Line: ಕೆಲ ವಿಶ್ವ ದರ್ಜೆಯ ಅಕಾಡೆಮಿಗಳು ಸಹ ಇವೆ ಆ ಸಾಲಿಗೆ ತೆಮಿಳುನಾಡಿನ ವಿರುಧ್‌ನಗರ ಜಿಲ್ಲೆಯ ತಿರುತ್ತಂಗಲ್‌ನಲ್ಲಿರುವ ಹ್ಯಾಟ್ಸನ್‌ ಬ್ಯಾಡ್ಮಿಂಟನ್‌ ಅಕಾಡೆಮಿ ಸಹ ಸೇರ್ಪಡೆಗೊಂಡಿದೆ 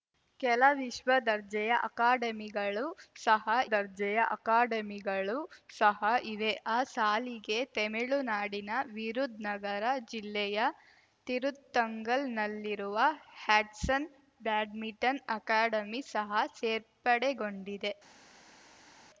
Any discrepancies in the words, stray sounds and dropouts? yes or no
yes